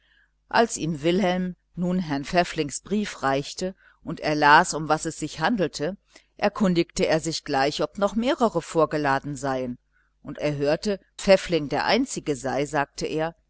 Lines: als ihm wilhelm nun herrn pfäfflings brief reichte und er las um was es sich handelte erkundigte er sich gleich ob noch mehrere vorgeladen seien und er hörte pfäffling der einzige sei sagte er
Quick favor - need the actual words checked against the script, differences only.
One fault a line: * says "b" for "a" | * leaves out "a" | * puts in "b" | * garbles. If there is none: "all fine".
all fine